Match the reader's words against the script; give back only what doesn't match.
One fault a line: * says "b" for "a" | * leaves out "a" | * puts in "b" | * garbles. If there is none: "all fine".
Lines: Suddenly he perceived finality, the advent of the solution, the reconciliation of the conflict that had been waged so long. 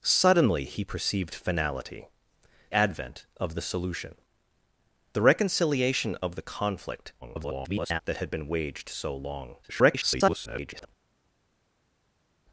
* leaves out "the"
* garbles
* garbles